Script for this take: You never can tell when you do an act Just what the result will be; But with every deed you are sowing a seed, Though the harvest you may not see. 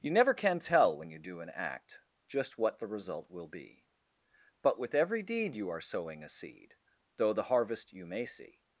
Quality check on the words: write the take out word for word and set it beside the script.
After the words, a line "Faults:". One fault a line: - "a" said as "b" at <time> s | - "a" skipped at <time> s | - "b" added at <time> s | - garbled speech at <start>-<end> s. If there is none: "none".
You never can tell when you do an act Just what the result will be; But with every deed you are sowing a seed, Though the harvest you may see.
Faults:
- "not" skipped at 8.2 s